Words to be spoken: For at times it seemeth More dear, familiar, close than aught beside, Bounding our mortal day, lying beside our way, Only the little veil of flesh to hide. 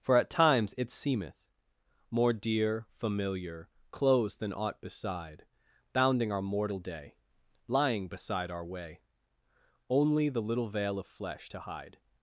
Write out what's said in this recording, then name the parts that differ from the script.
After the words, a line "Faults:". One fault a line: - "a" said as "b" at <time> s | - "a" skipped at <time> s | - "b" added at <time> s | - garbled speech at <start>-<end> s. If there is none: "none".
For at times it seemeth More dear, familiar, close than aught beside, Bounding our mortal day, lying beside our way, Only the little veil of flesh to hide.
Faults:
none